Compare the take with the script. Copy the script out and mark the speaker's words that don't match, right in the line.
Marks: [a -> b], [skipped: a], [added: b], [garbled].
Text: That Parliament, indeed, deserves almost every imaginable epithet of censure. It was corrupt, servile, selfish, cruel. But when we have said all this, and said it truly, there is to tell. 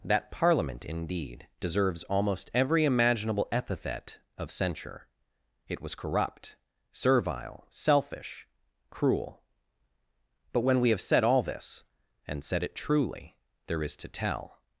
That Parliament, indeed, deserves almost every imaginable epithet of censure. It was corrupt, servile, selfish, cruel. But when we have said all this, and said it truly, there is to tell.